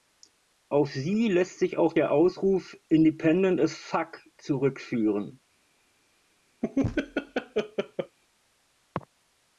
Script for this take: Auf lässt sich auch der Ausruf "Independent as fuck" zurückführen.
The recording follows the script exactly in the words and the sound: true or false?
false